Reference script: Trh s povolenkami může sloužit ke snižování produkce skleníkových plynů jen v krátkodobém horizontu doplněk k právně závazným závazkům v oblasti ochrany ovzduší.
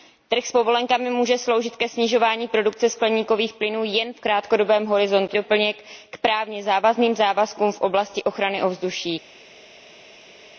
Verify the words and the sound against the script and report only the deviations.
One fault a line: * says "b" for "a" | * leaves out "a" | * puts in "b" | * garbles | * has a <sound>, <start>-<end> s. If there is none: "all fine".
all fine